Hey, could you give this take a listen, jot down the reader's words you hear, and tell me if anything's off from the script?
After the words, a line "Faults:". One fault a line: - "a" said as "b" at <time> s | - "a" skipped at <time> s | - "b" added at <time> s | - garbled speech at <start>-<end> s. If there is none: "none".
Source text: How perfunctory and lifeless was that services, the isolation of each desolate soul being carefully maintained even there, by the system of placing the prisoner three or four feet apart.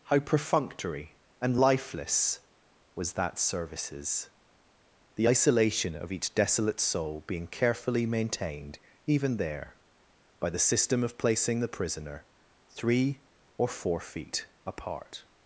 How perfunctory and lifeless was that services, the isolation of each desolate soul being carefully maintained even there, by the system of placing the prisoner three or four feet apart.
Faults:
none